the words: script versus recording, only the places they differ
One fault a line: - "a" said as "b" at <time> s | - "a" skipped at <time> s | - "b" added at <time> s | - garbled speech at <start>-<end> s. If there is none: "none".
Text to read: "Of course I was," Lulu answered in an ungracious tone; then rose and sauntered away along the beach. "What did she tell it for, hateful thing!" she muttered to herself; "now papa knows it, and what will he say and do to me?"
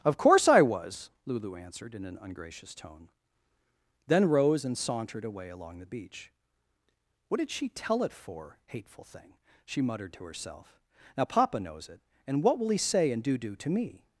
- "do" added at 13.4 s